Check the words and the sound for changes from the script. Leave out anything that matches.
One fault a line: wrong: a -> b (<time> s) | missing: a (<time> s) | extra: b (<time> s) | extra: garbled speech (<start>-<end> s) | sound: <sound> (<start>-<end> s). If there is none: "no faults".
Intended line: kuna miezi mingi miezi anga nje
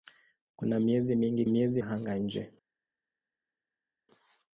no faults